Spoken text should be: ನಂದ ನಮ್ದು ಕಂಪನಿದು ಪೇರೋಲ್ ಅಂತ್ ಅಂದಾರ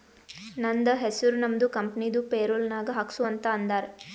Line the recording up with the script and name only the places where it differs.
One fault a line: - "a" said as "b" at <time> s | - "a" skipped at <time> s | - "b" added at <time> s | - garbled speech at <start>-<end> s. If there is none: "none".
- "ಹೆಸುರ್" added at 0.9 s
- "ನಾಗ್ ಹಾಕ್ಸು" added at 2.7 s